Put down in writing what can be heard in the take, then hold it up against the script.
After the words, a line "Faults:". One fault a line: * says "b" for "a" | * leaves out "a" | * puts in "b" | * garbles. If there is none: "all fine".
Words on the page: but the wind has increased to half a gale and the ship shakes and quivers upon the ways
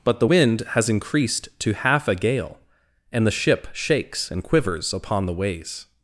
but the wind has increased to half a gale and the ship shakes and quivers upon the ways
Faults:
all fine